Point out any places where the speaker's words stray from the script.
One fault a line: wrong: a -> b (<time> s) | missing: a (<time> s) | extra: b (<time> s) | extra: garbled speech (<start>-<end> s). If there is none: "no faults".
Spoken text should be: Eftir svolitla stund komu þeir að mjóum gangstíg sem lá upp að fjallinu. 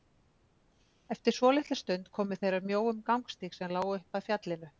no faults